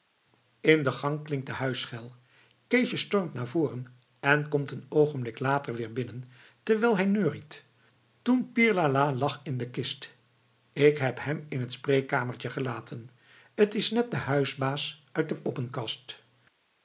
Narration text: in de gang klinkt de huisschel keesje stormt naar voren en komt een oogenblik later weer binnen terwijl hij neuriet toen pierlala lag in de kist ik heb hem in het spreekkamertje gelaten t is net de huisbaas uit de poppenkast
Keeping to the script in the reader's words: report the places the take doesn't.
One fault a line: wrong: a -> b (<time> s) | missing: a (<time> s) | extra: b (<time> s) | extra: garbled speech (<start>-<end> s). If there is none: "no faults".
no faults